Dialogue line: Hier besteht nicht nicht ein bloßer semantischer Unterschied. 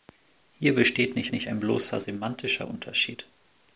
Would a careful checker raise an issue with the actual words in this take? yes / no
no